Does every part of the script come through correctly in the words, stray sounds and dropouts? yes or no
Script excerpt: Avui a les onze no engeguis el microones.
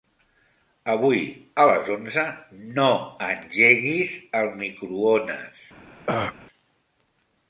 no